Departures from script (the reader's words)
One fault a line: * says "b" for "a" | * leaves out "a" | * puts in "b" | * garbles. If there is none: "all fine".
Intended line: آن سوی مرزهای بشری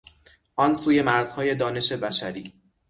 * puts in "دانش"